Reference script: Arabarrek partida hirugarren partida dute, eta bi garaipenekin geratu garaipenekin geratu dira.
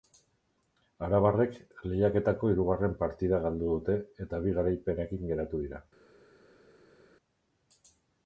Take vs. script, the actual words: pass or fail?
fail